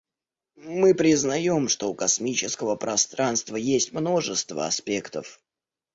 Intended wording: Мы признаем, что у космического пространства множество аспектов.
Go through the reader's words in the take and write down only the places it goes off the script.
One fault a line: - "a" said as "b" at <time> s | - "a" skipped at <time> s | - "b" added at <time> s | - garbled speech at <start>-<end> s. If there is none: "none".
- "есть" added at 3.6 s